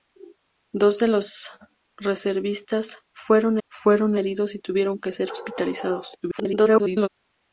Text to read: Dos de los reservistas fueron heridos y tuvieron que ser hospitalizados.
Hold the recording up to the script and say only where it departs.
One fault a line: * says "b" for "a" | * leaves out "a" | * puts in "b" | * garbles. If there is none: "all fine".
* puts in "fueron"
* garbles